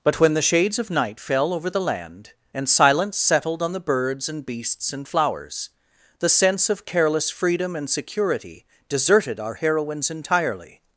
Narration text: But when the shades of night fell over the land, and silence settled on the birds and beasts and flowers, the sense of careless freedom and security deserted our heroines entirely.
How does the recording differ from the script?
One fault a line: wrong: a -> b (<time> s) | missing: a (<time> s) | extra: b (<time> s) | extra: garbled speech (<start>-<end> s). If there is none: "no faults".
no faults